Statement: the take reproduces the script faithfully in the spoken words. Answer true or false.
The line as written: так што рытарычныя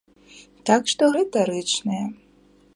true